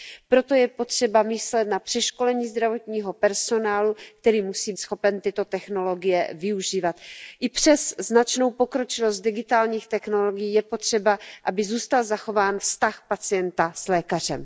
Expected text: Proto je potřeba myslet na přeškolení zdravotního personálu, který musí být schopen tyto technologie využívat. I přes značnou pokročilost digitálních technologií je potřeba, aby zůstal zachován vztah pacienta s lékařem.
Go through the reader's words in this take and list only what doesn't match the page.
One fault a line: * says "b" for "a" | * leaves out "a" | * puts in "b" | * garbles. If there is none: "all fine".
* leaves out "být"